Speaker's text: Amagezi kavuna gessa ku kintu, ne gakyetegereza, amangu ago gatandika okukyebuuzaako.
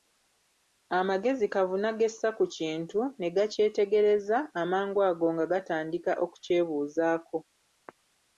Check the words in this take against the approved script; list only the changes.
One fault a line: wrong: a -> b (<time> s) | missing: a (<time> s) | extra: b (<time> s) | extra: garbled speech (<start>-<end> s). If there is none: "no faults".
extra: nga (5.3 s)